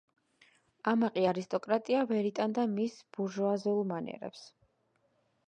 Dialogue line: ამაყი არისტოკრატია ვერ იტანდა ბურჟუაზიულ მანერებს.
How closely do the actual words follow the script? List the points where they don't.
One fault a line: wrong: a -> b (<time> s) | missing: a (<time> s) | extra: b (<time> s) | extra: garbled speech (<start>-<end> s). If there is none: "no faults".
extra: მის (2.8 s)